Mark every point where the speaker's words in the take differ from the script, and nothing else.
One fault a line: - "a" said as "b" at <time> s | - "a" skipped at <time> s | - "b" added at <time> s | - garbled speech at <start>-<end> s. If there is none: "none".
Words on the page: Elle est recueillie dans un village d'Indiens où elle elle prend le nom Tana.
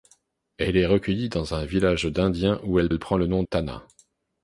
none